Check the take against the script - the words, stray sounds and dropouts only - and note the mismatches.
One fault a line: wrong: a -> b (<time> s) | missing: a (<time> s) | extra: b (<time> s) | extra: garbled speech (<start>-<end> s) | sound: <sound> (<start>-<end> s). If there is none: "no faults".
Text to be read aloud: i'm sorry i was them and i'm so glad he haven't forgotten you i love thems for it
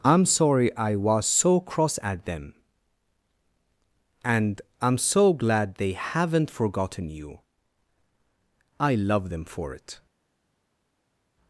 extra: so cross at (1.3 s)
wrong: he -> they (5.8 s)
wrong: thems -> them (9.3 s)